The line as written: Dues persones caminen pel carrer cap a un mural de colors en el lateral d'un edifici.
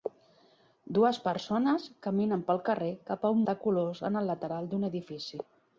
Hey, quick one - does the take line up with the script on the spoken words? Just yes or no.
no